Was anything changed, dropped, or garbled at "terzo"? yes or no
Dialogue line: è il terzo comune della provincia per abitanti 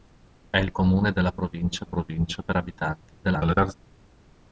yes